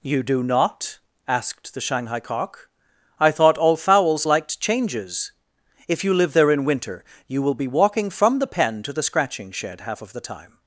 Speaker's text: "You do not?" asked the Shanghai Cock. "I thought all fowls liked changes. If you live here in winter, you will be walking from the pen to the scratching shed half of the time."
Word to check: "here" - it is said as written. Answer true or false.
false